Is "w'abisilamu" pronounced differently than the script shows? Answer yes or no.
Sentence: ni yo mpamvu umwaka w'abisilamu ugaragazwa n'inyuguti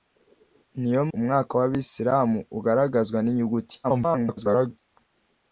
no